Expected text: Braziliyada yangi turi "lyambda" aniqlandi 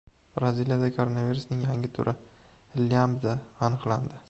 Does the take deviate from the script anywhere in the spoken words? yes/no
yes